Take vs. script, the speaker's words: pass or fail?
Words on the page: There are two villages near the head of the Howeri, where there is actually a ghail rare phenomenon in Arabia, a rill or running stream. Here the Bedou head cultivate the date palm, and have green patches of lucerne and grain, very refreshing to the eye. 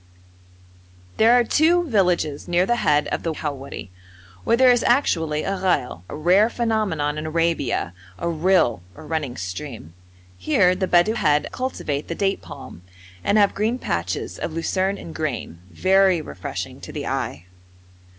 pass